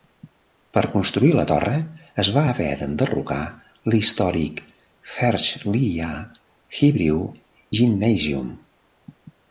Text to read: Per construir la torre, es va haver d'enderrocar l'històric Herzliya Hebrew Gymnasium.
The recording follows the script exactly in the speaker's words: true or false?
true